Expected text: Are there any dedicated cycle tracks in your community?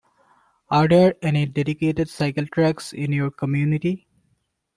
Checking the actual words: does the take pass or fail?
pass